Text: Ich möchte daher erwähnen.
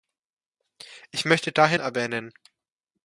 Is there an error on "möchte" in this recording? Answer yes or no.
no